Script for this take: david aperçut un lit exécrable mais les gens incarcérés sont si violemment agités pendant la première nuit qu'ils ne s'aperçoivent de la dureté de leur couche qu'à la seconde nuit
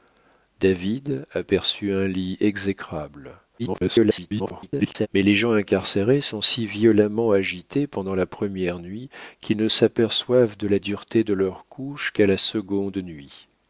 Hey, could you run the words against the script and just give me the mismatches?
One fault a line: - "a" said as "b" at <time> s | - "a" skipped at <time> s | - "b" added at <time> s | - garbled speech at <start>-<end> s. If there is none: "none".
- garbled speech at 3.6-5.1 s